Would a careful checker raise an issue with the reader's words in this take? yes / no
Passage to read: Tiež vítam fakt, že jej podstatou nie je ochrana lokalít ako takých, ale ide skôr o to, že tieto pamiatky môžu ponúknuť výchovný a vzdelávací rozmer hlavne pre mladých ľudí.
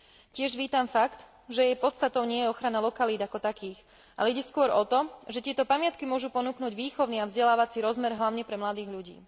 no